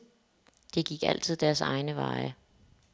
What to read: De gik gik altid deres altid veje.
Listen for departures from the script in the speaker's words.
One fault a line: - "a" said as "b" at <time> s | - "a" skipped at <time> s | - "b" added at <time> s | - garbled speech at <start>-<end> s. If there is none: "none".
- "gik" skipped at 1.0 s
- "altid" said as "egne" at 1.6 s